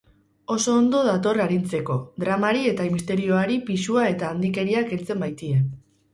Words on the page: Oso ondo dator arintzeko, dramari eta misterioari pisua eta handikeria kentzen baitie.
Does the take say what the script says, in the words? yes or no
yes